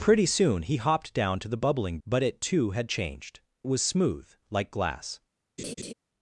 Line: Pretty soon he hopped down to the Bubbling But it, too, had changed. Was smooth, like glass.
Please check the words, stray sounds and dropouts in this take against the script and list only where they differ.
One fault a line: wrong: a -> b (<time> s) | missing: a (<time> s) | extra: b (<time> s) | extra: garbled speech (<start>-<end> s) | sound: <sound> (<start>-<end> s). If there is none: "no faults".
sound: laugh (5.6-5.9 s)